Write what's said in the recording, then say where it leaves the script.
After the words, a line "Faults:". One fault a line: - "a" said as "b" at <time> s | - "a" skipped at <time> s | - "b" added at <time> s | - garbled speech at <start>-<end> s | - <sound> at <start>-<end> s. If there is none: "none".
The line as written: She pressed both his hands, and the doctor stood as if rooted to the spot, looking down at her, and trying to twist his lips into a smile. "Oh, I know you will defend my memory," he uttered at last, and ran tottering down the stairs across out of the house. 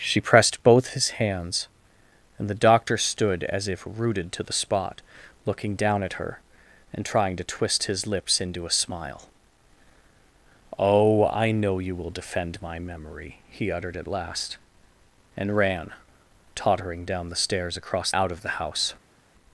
She pressed both his hands, and the doctor stood as if rooted to the spot, looking down at her, and trying to twist his lips into a smile. "Oh, I know you will defend my memory," he uttered at last, and ran tottering down the stairs across out of the house.
Faults:
none